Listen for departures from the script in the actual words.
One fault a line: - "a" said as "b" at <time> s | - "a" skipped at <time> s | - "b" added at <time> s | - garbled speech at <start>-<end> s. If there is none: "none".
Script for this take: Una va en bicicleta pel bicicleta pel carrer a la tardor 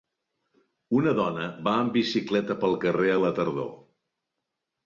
- "dona" added at 1.2 s
- "bicicleta pel" skipped at 2.8 s